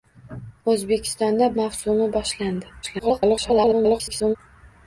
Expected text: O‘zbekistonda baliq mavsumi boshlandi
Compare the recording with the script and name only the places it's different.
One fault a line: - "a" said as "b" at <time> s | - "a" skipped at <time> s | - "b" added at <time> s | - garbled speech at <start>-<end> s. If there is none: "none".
- "baliq" skipped at 1.5 s
- garbled speech at 2.8-4.4 s